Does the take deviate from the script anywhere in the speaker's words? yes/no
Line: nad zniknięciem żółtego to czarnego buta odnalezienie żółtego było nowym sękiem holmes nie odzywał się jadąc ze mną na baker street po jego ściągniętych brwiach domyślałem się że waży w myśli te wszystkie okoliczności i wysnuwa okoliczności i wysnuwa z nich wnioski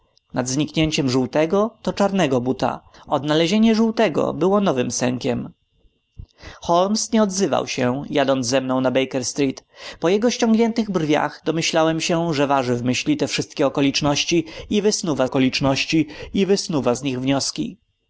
no